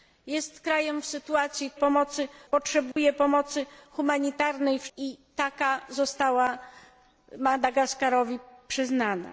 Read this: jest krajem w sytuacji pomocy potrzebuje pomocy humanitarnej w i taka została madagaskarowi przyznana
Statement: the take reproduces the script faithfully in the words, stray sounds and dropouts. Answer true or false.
false